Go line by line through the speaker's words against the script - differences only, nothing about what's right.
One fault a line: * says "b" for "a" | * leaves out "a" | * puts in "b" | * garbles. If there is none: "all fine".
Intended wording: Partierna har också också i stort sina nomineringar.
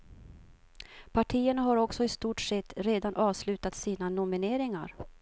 * leaves out "också"
* puts in "sett redan avslutat"